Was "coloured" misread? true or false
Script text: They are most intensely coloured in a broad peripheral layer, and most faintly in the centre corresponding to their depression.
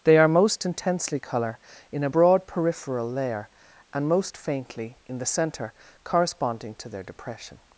true